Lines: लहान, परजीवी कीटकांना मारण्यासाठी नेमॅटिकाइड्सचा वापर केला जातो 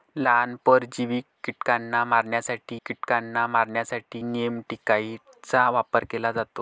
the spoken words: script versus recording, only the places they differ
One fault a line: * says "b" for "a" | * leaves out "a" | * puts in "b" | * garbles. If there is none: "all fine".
* puts in "कीटकांना मारण्यासाठी"